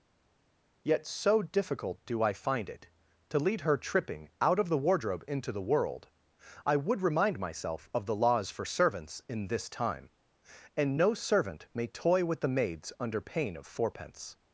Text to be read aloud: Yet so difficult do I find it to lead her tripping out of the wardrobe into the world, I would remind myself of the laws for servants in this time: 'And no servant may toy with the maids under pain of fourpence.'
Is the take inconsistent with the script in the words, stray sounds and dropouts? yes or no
no